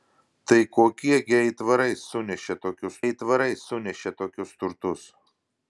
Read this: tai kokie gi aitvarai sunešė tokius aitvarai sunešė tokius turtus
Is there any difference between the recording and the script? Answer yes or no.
no